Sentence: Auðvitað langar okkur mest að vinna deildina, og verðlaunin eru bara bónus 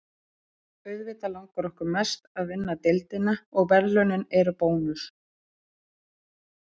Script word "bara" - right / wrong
wrong